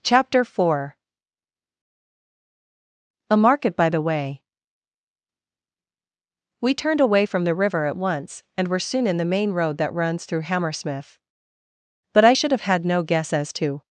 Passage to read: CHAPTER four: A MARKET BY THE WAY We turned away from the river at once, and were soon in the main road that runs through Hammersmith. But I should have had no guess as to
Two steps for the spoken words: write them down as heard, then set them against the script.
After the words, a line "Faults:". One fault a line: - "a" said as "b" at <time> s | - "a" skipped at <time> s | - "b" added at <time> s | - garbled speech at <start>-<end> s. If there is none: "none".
CHAPTER four: A MARKET BY THE WAY We turned away from the river at once, and were soon in the main road that runs through Hammersmith. But I should have had no guess as to
Faults:
none